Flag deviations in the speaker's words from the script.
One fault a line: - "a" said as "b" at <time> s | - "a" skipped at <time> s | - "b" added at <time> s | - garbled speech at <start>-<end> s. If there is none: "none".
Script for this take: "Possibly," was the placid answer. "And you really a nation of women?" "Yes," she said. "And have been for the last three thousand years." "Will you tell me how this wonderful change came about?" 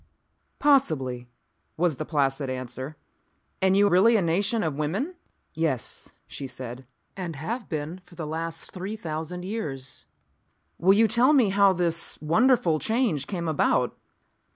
none